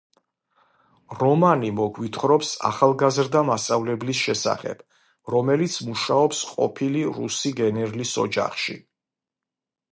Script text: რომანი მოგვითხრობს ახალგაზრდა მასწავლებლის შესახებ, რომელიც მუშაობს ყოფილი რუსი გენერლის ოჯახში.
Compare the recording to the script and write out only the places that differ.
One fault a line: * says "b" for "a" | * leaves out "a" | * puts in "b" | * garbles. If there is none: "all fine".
all fine